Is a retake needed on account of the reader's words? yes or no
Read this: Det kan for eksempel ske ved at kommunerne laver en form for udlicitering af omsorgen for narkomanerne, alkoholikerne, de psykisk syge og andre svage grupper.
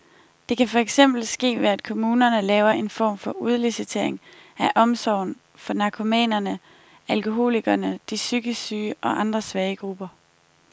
no